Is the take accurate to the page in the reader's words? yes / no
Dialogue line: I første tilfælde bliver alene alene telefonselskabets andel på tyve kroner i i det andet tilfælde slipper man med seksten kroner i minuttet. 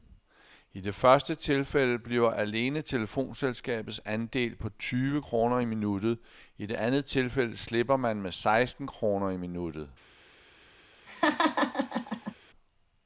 no